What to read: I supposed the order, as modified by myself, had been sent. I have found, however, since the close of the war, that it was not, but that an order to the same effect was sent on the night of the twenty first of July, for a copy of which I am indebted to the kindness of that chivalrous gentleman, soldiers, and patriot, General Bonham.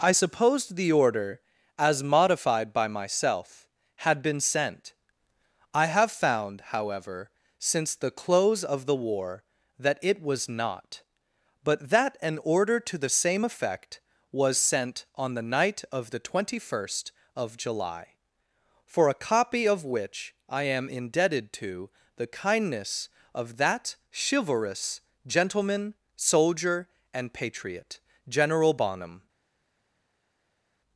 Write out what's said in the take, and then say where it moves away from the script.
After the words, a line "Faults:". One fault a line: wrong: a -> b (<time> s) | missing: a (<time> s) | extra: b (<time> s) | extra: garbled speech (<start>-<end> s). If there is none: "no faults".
I supposed the order, as modified by myself, had been sent. I have found, however, since the close of the war, that it was not, but that an order to the same effect was sent on the night of the twenty first of July, for a copy of which I am indebted to the kindness of that chivalrous gentleman, soldier, and patriot, General Bonham.
Faults:
wrong: soldiers -> soldier (26.1 s)